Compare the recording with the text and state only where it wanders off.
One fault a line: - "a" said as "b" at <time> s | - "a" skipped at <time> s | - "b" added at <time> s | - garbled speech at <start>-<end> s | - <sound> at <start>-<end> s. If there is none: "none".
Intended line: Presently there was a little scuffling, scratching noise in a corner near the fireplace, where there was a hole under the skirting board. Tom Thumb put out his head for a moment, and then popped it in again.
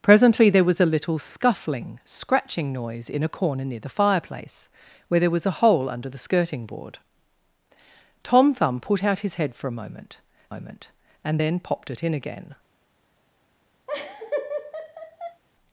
- "moment" added at 10.5 s
- laugh at 13.9-15.4 s